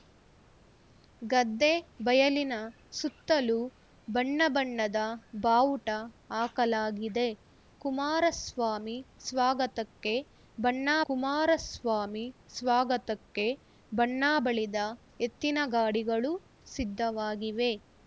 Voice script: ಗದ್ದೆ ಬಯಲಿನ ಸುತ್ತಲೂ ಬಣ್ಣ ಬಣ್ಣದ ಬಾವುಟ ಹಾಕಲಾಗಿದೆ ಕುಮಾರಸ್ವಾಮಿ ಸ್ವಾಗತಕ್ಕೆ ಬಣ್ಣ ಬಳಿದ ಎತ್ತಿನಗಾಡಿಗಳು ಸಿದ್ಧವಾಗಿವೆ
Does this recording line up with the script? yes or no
no